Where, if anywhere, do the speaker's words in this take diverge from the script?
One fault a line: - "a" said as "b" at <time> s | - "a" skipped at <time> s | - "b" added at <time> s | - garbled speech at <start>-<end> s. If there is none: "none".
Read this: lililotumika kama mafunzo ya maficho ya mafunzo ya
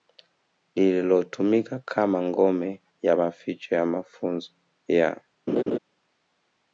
- "mafunzo" said as "ngome" at 2.2 s